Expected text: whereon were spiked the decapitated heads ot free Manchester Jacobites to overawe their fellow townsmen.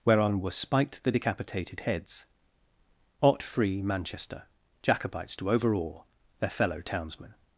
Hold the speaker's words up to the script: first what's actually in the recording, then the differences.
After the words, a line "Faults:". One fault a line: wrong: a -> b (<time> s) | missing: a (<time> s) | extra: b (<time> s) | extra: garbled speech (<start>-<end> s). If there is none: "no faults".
whereon were spiked the decapitated heads ot free Manchester Jacobites to overawe their fellow townsmen.
Faults:
no faults